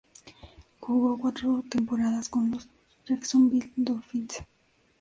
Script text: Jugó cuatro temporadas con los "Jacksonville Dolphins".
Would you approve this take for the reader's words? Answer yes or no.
yes